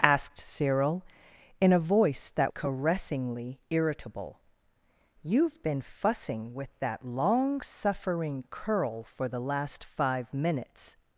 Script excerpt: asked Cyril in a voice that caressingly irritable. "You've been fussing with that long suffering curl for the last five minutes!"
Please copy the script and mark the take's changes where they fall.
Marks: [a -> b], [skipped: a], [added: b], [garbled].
asked Cyril in a voice that caressingly irritable. "You've been fussing with that long suffering curl for the last five minutes!"